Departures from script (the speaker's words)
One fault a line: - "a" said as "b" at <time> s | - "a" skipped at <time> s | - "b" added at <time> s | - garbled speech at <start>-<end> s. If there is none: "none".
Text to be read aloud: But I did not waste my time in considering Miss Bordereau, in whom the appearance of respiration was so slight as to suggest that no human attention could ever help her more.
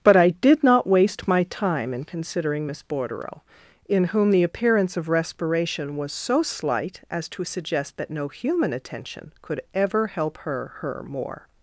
- "her" added at 10.8 s